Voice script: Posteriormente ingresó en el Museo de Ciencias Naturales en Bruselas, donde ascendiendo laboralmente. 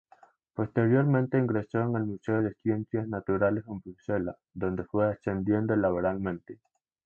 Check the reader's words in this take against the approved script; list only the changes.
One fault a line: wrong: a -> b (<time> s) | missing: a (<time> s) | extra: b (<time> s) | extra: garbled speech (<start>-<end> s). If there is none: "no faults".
extra: fue (4.8 s)